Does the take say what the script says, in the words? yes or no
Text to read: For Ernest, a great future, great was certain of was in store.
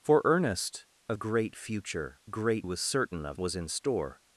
yes